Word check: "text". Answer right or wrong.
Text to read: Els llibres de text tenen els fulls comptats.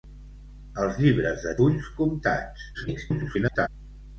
wrong